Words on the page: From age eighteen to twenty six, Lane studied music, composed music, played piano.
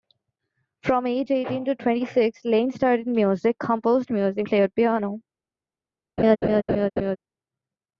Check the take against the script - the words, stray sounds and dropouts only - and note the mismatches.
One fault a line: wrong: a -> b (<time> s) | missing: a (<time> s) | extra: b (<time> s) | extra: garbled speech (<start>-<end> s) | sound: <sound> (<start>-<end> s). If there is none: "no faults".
sound: laugh (6.2-7.2 s)